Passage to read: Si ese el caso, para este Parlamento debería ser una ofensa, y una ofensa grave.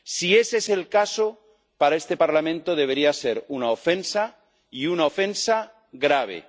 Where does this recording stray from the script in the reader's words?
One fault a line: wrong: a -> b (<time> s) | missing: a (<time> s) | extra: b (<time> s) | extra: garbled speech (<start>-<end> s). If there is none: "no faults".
extra: es (0.6 s)